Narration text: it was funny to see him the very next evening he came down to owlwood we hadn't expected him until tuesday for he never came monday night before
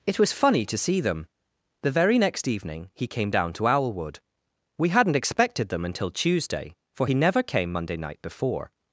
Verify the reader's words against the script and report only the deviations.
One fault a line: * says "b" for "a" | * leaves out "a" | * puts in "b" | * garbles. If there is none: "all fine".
* says "them" for "him"
* says "them" for "him"